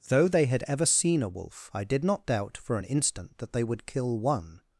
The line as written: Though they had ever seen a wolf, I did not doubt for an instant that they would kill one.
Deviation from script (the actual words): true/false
false